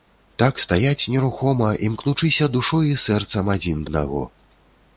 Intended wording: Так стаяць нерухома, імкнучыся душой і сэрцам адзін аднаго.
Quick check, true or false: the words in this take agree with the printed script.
true